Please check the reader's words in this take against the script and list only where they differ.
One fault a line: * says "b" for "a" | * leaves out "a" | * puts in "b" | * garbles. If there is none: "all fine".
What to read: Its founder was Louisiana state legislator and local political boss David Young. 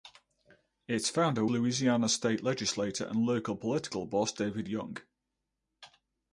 * leaves out "was"